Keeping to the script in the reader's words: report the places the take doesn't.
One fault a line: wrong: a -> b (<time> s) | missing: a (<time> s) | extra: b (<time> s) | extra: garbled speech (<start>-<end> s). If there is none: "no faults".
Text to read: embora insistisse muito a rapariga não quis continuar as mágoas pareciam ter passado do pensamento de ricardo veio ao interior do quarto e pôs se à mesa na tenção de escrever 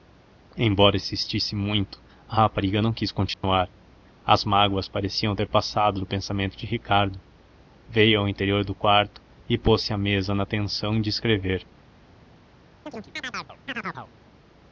no faults